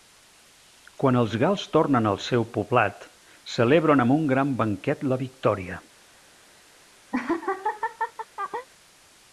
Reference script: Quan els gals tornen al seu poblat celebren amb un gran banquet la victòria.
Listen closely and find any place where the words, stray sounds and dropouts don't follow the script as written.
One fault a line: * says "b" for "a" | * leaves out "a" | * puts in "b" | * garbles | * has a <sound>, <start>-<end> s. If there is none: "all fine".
* has a laugh, 7.1-8.7 s